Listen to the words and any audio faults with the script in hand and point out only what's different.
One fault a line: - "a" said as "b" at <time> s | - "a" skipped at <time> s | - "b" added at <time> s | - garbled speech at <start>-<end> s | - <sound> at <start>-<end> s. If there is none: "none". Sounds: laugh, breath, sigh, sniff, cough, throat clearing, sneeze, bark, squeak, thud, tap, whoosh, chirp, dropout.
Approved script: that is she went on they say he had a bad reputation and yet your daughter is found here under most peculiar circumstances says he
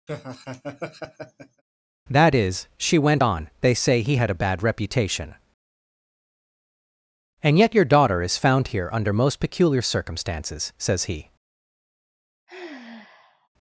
- laugh at 0.1-1.6 s
- sigh at 12.5-13.5 s